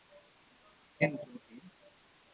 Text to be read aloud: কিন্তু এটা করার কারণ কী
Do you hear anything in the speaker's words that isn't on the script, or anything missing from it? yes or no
yes